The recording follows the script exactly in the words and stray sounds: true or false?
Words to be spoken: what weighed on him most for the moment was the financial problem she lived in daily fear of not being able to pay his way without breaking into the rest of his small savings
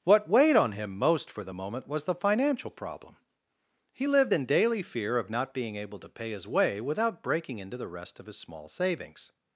false